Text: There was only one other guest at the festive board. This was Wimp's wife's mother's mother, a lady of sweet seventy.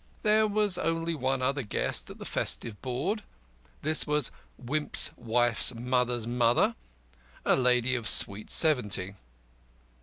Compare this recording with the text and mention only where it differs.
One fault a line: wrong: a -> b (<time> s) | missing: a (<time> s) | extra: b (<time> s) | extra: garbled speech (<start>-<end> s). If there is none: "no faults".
no faults